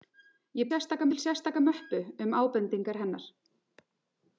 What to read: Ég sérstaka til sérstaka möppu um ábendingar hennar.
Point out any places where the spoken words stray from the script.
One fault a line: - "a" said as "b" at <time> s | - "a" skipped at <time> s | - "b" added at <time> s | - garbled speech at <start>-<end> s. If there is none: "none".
none